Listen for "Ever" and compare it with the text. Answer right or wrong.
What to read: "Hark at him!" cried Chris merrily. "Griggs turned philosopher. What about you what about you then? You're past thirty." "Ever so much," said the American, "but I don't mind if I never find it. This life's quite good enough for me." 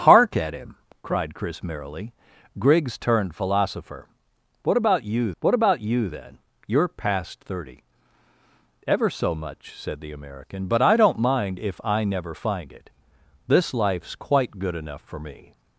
right